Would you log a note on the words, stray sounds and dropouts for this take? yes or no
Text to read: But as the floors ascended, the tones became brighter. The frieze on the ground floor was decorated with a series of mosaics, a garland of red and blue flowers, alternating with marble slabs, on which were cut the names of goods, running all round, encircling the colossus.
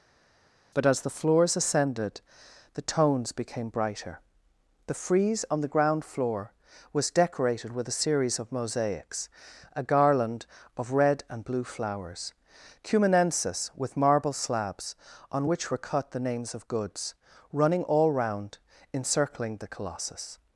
yes